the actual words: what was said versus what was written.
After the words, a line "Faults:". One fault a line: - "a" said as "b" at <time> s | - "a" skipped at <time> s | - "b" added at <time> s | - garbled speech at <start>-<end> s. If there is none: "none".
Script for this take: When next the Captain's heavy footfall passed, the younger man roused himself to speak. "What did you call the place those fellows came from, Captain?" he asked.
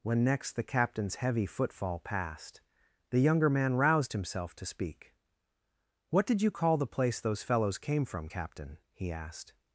When next the Captain's heavy footfall passed, the younger man roused himself to speak. "What did you call the place those fellows came from, Captain?" he asked.
Faults:
none